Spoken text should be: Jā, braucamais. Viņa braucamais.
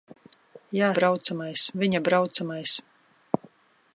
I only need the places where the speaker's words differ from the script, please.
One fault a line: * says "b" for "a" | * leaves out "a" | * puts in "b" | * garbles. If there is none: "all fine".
all fine